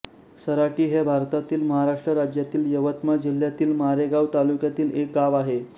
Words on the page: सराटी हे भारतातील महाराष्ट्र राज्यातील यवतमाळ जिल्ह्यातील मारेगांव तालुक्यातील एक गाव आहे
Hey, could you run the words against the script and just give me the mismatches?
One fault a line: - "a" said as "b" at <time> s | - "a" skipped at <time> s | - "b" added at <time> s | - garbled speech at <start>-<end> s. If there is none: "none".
none